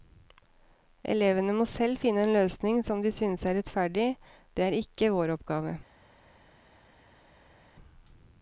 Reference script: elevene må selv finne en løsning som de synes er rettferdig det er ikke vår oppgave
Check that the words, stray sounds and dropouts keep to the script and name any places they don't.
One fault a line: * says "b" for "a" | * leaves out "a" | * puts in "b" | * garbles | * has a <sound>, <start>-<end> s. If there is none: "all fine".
all fine